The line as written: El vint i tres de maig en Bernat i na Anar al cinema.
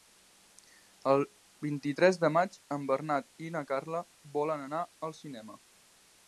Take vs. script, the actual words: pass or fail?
fail